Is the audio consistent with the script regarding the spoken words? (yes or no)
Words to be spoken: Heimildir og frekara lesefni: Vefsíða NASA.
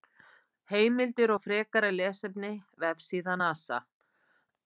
yes